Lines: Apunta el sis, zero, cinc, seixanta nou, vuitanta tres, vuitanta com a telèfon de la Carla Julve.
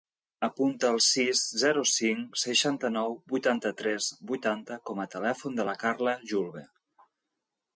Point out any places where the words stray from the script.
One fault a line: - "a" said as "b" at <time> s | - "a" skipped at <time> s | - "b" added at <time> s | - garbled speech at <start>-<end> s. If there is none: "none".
none